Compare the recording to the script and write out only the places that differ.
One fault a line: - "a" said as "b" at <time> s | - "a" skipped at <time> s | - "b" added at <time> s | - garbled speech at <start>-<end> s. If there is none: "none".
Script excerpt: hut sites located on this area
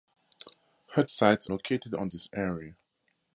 none